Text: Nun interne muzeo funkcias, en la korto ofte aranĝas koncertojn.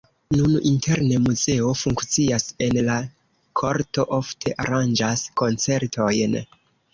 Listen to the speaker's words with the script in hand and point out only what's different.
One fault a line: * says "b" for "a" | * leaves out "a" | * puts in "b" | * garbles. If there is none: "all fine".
all fine